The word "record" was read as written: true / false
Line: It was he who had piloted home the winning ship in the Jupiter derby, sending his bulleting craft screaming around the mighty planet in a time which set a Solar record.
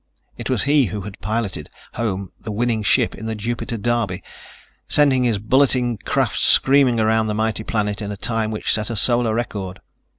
true